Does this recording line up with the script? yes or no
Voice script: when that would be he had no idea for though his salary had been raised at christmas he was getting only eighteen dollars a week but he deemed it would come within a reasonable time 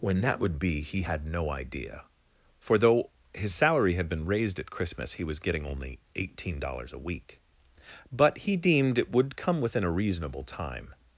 yes